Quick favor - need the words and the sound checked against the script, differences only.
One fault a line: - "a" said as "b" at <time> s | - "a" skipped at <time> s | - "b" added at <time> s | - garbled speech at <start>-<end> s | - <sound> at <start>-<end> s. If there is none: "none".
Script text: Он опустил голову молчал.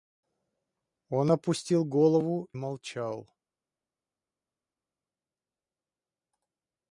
none